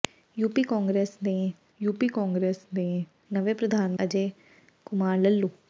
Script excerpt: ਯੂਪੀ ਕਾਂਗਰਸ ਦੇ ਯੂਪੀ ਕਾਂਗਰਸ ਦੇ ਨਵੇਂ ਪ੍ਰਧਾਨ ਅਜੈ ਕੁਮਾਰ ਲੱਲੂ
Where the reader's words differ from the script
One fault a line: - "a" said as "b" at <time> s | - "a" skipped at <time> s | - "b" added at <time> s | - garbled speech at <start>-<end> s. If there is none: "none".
none